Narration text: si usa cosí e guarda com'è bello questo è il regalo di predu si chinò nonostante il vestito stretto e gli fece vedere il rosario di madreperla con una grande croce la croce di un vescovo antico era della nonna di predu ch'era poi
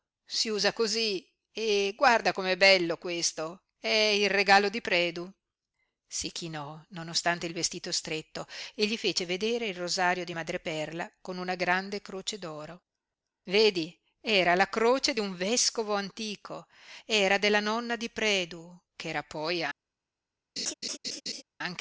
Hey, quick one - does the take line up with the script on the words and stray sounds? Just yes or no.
no